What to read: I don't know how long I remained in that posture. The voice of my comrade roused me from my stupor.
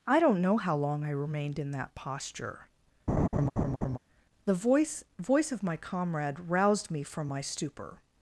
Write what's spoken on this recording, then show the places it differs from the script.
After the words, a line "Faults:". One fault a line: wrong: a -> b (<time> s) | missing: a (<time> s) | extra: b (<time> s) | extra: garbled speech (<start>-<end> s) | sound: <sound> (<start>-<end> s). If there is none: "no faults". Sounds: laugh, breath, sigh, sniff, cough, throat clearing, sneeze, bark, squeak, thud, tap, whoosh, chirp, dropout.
I don't know how long I remained in that posture. The voice voice of my comrade roused me from my stupor.
Faults:
sound: laugh (3.1-4.0 s)
extra: voice (5.2 s)